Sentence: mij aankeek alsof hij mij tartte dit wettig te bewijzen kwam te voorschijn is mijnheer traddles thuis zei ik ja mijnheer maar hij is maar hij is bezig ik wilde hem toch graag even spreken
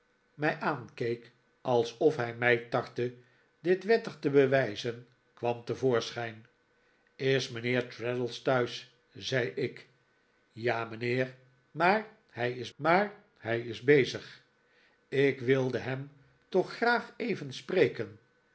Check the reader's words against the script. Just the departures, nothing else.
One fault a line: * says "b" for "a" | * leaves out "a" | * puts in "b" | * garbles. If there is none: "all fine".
all fine